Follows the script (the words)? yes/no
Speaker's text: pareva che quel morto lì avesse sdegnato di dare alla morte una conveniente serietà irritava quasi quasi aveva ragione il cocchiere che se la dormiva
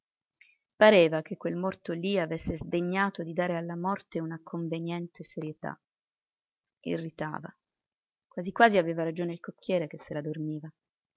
yes